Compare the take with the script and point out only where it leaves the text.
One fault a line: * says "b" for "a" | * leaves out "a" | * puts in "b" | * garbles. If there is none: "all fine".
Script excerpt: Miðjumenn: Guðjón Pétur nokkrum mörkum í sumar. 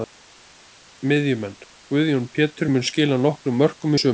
* puts in "mun skila"